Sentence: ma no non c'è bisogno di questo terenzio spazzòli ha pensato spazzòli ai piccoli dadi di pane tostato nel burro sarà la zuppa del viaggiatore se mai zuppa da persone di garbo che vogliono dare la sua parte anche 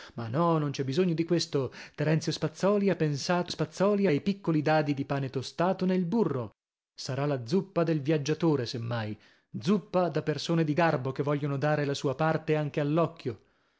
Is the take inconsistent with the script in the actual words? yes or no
no